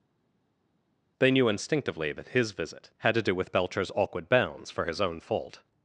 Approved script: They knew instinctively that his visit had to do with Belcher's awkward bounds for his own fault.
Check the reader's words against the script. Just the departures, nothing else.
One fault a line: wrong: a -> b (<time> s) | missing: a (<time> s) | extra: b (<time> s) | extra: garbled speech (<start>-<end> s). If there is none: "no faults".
no faults